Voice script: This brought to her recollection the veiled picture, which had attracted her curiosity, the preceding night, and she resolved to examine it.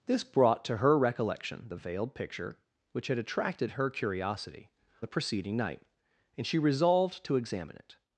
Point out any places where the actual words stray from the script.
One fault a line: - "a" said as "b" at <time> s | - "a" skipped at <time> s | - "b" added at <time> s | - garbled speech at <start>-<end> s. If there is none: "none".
none